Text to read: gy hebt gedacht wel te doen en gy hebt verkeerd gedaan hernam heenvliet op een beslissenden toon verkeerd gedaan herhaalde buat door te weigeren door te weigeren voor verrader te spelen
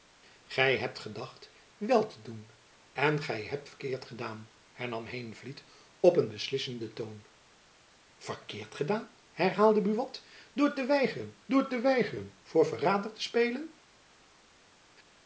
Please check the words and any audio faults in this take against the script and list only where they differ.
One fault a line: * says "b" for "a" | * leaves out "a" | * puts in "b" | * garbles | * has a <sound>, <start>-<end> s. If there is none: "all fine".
all fine